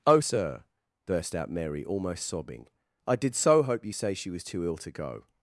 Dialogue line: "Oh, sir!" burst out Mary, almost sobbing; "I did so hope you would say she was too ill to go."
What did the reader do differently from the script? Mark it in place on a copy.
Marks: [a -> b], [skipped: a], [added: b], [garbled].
"Oh, sir!" burst out Mary, almost sobbing; "I did so hope you [skipped: would] say she was too ill to go."